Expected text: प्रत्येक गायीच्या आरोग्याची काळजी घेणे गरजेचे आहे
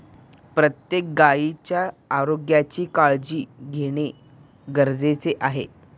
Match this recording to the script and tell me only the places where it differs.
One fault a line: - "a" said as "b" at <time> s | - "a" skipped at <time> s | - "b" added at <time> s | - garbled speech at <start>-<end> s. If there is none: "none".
none